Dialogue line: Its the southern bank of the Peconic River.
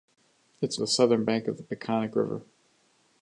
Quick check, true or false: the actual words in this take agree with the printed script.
true